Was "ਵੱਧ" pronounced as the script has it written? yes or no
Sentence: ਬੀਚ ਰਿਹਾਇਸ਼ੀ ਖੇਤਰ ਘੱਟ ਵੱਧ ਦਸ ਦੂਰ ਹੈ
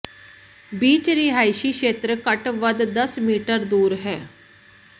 yes